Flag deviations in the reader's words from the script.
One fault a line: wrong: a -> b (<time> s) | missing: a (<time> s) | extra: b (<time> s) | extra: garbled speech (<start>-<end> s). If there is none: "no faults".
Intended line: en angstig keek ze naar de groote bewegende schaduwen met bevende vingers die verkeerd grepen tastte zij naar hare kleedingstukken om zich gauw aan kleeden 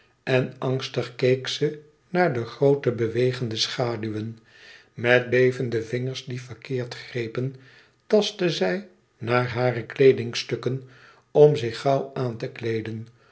extra: te (12.4 s)